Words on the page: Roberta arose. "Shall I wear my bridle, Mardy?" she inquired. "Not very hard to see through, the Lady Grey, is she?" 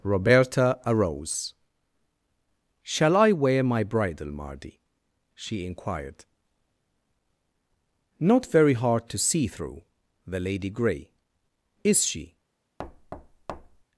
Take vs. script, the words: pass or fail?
pass